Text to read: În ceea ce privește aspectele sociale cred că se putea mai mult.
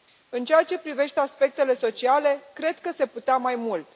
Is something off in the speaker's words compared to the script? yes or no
no